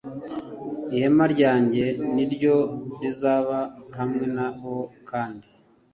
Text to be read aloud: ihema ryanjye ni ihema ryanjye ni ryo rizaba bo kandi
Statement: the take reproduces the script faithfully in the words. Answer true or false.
false